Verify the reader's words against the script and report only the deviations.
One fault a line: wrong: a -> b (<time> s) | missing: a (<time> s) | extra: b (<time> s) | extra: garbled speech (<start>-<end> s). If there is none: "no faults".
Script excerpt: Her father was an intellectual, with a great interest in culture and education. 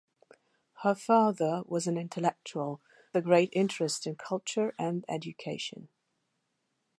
missing: with (2.8 s)